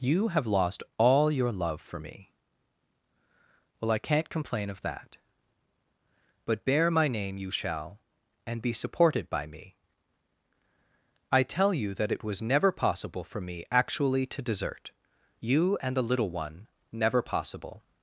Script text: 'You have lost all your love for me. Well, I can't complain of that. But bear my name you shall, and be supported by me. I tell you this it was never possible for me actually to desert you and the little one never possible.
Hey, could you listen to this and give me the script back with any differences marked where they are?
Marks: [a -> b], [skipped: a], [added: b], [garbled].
'You have lost all your love for me. Well, I can't complain of that. But bear my name you shall, and be supported by me. I tell you [this -> that] it was never possible for me actually to desert you and the little one never possible.